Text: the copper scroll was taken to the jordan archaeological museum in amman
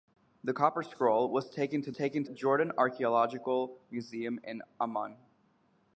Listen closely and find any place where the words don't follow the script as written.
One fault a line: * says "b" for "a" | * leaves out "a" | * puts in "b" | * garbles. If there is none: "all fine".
* says "taken" for "the"